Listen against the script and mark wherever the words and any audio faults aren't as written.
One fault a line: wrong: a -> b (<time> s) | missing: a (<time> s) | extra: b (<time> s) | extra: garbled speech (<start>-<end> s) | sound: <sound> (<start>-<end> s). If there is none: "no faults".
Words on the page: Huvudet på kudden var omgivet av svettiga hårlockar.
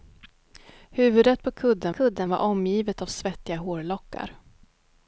extra: kudden (1.9 s)